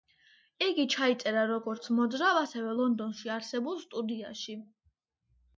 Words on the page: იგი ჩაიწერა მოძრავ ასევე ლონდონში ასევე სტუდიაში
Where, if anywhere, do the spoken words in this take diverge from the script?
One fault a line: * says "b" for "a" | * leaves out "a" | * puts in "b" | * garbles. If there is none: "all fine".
* puts in "როგორც"
* says "არსებულ" for "ასევე"